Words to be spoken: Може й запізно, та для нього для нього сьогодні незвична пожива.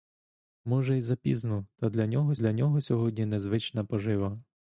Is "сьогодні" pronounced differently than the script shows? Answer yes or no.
no